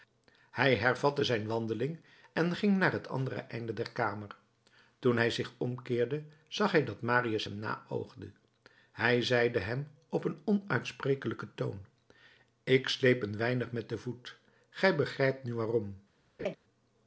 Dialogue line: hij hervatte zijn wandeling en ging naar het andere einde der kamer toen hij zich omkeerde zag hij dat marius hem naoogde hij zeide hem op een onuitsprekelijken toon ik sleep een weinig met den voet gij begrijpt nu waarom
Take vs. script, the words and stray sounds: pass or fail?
fail